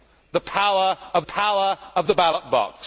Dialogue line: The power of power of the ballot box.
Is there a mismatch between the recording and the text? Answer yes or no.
no